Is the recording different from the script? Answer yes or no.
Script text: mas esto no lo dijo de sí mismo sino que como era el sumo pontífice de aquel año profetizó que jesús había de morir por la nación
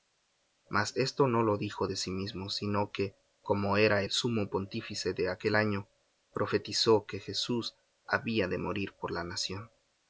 no